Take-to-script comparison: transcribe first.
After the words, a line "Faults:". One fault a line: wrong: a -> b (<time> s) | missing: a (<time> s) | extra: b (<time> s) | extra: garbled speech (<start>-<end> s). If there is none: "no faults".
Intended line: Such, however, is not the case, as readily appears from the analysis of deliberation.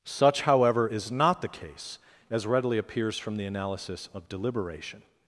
Such, however, is not the case, as readily appears from the analysis of deliberation.
Faults:
no faults